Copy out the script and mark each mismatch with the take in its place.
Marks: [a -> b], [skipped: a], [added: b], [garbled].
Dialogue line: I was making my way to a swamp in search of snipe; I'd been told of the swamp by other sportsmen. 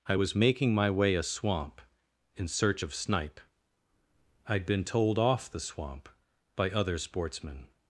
I was making my way [skipped: to] a swamp in search of snipe; I'd been told [of -> off] the swamp by other sportsmen.